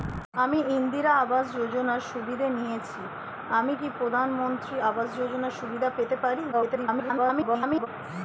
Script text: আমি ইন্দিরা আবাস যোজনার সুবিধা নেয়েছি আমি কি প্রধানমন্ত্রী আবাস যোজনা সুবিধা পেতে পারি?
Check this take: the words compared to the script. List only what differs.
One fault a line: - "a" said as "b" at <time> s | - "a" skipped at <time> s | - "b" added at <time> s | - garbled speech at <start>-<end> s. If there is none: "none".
- garbled speech at 6.5-7.9 s